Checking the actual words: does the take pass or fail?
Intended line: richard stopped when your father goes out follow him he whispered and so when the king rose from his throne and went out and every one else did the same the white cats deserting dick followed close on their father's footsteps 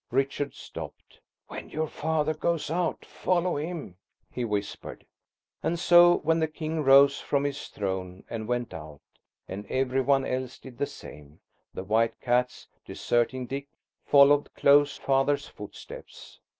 fail